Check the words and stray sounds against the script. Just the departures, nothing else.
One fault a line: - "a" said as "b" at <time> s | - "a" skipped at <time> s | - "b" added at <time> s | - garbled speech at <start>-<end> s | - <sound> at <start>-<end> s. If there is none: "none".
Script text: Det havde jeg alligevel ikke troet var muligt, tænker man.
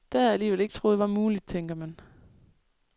none